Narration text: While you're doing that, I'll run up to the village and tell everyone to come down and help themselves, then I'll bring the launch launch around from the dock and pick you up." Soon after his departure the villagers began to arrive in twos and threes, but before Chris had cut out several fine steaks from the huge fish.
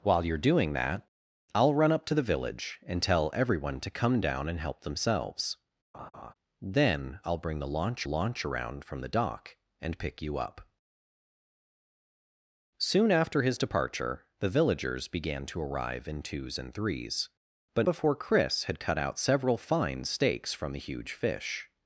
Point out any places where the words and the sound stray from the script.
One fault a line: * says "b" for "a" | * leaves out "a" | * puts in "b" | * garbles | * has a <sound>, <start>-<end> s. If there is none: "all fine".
* has a laugh, 5.9-6.3 s